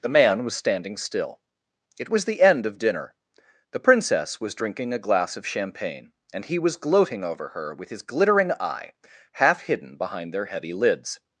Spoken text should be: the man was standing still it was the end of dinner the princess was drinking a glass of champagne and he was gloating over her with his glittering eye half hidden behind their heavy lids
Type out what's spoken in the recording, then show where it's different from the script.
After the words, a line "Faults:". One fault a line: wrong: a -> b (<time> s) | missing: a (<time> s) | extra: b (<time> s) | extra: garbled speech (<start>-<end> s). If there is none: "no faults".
the man was standing still it was the end of dinner the princess was drinking a glass of champagne and he was gloating over her with his glittering eye half hidden behind their heavy lids
Faults:
no faults